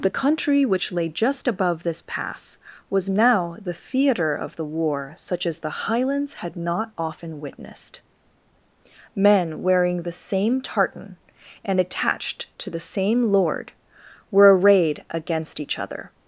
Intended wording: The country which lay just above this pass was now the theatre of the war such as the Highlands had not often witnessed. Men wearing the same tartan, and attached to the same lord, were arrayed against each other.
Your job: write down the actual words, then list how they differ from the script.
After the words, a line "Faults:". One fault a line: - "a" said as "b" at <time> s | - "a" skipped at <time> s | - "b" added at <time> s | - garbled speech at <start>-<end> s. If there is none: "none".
The country which lay just above this pass was now the theatre of the war such as the Highlands had not often witnessed. Men wearing the same tartan, and attached to the same lord, were arrayed against each other.
Faults:
none